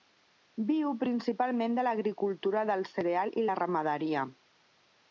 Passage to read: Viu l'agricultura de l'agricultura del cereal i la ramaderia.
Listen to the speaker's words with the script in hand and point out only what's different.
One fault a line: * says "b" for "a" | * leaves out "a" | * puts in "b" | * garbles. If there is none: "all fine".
* says "principalment" for "l'agricultura"